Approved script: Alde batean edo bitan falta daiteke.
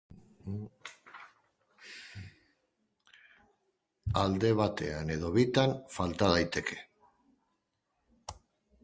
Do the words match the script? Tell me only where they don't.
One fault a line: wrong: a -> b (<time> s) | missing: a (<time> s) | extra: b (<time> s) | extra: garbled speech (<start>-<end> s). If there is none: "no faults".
no faults